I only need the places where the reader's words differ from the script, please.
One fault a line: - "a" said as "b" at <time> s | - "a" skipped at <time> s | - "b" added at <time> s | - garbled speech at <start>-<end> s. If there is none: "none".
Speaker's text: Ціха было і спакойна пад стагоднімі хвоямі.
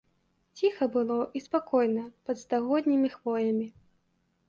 none